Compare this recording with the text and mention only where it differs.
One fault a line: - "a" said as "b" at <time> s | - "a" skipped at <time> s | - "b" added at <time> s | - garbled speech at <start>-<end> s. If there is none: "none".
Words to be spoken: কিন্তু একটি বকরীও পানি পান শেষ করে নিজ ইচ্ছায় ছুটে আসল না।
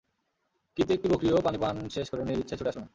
none